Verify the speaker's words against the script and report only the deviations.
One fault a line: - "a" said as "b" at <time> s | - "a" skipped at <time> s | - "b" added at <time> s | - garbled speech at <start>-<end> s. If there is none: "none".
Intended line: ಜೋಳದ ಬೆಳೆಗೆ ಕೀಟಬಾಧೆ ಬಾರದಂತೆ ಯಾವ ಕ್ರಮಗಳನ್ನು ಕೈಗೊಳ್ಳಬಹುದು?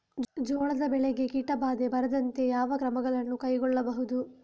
none